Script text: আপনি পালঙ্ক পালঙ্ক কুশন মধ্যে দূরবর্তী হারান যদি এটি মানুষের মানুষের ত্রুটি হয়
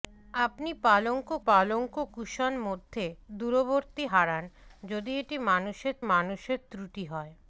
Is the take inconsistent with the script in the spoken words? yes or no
no